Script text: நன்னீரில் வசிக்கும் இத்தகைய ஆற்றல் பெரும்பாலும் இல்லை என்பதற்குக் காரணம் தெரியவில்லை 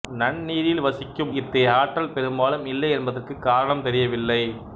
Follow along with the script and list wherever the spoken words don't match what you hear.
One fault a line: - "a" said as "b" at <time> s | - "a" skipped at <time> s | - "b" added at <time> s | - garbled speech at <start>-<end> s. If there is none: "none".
none